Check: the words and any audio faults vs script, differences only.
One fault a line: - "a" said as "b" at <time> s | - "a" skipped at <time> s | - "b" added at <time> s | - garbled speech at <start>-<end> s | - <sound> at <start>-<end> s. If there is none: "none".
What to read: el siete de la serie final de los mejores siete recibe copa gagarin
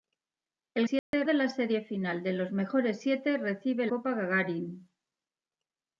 - dropout at 1.0-1.1 s